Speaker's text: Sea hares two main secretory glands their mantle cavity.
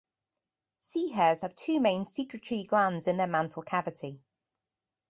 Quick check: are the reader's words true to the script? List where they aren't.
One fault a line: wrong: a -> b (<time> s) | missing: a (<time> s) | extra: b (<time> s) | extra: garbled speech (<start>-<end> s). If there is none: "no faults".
extra: have (1.4 s)
extra: in (3.1 s)